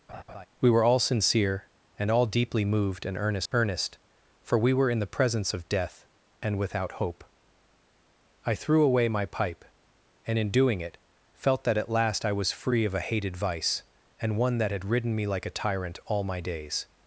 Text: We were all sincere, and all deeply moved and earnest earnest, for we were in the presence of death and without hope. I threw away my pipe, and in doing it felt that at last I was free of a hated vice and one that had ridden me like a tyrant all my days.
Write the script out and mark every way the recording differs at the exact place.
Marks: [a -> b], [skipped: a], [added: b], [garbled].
We were all sincere, and all deeply moved and earnest earnest, for we were in the presence of death and without hope. I threw away my pipe, and in doing it felt that at last I was free of a hated vice and one that had ridden me like a tyrant all my days.